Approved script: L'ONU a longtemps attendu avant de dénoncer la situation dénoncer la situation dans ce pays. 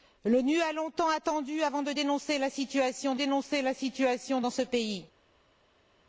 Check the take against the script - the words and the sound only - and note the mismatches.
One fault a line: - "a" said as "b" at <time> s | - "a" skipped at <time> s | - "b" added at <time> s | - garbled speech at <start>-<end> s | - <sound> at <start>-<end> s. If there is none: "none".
none